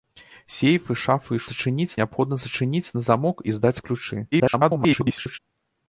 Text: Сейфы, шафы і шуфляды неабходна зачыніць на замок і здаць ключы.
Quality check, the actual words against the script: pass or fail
fail